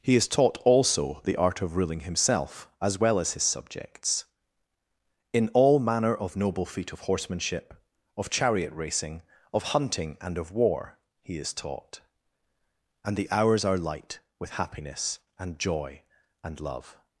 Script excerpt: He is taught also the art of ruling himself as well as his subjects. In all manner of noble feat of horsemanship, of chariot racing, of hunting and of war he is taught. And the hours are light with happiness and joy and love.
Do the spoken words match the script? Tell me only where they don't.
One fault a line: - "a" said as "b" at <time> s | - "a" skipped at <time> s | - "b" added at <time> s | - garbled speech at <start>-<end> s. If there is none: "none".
none